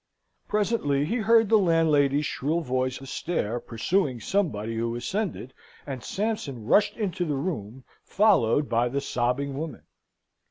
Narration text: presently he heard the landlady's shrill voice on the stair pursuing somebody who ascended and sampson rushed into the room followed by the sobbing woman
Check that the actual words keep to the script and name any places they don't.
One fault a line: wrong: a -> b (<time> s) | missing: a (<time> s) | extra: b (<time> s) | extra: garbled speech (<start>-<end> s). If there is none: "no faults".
missing: on (3.0 s)